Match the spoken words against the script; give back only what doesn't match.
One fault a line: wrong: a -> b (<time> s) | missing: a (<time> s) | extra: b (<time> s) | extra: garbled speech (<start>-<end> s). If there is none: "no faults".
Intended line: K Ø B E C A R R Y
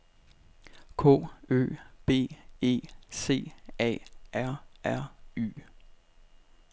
no faults